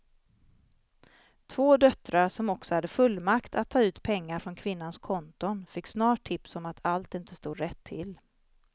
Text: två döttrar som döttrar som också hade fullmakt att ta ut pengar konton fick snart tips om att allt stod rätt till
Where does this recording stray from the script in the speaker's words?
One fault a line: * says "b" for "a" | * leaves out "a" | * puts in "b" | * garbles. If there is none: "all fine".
* leaves out "döttrar som"
* puts in "från kvinnans"
* puts in "inte"